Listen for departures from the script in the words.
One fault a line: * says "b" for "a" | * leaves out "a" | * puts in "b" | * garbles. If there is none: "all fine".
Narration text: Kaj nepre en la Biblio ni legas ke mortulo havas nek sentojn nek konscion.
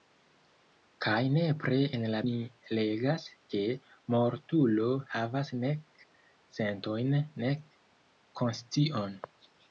* leaves out "Biblio"